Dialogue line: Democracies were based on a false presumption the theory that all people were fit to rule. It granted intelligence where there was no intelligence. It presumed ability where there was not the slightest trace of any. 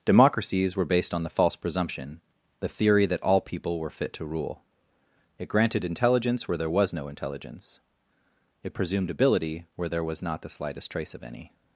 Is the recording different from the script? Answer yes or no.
yes